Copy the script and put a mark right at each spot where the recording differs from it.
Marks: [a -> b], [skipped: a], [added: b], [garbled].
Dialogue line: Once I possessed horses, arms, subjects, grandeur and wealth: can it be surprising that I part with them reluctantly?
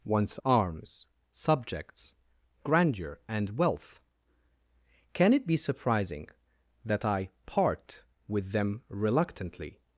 Once [skipped: I possessed horses,] arms, subjects, grandeur and wealth: can it be surprising that I part with them reluctantly?